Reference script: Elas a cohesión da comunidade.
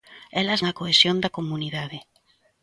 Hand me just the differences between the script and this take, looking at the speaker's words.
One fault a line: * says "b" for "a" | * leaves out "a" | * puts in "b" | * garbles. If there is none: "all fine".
all fine